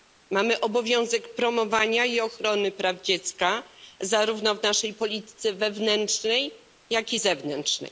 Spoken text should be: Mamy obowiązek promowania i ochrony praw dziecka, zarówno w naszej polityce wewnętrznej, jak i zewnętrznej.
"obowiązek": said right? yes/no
yes